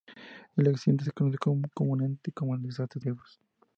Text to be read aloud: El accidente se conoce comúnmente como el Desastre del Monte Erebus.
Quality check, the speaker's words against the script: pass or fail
fail